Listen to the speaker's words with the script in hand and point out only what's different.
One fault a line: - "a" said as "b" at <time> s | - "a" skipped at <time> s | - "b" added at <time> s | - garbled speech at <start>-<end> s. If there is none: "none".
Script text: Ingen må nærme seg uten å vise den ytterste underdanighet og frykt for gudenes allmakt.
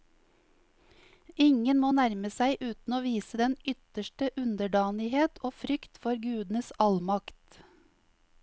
none